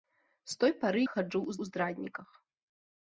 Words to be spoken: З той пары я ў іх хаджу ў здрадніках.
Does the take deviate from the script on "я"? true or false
true